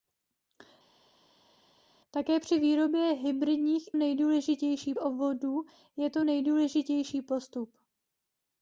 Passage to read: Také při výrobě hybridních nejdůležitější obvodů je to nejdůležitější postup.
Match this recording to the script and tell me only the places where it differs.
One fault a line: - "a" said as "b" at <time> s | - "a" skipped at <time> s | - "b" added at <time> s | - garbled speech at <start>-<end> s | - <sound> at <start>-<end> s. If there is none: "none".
none